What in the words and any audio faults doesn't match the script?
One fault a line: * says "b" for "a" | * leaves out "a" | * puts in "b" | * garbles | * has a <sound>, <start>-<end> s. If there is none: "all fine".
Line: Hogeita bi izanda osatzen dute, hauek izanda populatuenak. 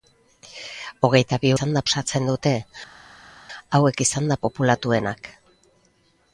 all fine